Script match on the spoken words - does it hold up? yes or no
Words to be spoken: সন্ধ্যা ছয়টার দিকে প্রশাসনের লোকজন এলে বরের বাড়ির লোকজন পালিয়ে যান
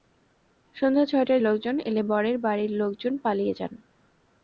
no